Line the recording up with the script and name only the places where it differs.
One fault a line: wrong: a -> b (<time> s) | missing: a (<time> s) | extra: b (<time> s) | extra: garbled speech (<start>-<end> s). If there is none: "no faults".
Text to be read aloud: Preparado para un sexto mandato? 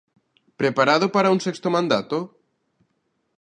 no faults